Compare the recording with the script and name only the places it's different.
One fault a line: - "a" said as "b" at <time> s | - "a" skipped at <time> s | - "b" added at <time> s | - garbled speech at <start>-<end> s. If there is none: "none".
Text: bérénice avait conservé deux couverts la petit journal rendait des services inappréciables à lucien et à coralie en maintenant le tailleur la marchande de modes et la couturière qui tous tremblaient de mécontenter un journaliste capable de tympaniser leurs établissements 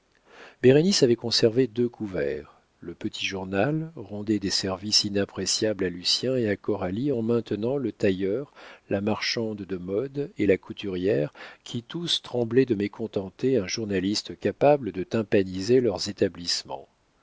- "la" said as "le" at 2.8 s